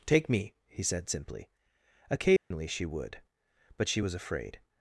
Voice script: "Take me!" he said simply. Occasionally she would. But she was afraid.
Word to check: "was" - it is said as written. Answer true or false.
true